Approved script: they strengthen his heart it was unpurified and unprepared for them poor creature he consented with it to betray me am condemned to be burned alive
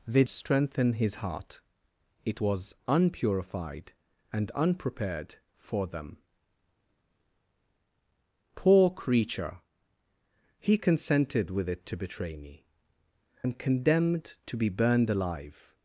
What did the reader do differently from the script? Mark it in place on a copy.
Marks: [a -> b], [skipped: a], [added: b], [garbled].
they strengthen his heart it was unpurified and unprepared for them poor creature he consented with it to betray me am condemned to be burned alive